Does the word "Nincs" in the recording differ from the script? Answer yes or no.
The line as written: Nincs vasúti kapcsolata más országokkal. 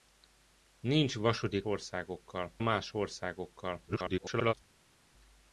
no